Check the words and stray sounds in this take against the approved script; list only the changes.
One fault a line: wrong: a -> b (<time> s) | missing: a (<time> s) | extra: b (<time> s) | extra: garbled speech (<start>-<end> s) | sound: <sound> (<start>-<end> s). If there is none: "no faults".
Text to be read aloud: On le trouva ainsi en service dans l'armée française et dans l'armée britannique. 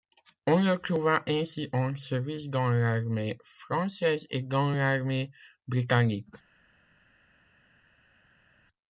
no faults